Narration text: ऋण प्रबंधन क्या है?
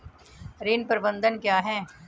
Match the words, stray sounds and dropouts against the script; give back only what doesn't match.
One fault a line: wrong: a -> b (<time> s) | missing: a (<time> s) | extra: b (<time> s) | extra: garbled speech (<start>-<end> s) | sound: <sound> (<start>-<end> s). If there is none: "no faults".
no faults